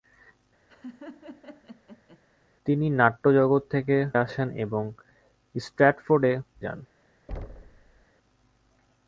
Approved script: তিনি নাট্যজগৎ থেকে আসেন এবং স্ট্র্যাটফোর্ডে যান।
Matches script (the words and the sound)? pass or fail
fail